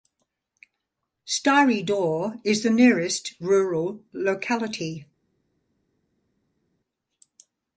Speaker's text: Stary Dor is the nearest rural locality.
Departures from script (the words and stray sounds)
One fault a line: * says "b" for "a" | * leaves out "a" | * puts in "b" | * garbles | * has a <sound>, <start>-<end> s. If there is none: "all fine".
all fine